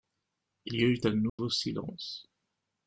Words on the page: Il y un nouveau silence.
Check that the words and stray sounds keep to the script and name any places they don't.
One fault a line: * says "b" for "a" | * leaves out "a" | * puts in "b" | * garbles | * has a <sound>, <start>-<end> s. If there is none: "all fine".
* puts in "eut"
* has a dropout, 1.3-1.4 s